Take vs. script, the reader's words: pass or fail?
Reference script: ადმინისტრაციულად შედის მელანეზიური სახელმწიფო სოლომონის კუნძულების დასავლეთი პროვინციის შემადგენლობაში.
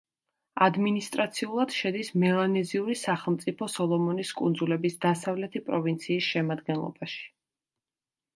pass